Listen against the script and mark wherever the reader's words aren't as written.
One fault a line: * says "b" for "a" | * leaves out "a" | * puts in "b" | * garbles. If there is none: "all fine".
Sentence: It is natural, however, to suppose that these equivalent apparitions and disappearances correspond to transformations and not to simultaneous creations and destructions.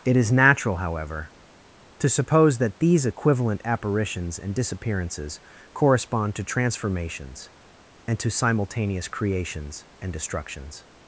* leaves out "not"